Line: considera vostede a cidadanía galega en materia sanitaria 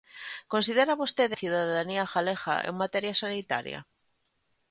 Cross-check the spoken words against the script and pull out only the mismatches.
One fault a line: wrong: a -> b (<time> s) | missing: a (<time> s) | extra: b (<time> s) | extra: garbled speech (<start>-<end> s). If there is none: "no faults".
no faults